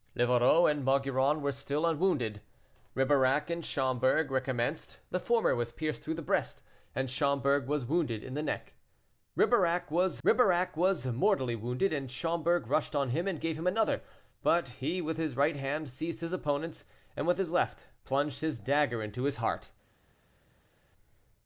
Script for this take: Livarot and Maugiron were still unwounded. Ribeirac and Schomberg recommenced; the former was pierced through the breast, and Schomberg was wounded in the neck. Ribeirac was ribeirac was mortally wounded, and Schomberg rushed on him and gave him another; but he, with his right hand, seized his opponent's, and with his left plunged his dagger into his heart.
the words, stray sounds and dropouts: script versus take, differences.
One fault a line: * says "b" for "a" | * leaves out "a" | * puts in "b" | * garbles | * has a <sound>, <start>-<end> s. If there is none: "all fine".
all fine